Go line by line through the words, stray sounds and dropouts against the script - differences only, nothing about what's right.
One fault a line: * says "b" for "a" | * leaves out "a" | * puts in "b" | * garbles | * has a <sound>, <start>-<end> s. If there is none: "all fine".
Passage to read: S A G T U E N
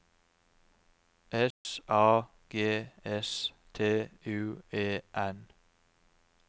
* has a dropout, 1.5-1.7 s
* puts in "S"